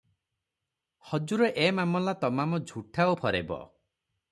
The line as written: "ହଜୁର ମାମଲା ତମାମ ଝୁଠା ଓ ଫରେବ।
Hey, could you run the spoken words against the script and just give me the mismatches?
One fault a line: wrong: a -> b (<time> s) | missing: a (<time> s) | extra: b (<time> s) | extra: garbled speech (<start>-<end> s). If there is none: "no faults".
extra: ଏ (1.6 s)